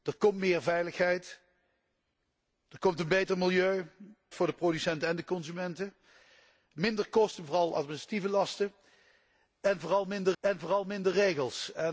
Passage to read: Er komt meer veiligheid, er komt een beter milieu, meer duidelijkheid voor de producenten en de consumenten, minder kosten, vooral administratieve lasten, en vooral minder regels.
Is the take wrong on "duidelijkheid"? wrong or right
wrong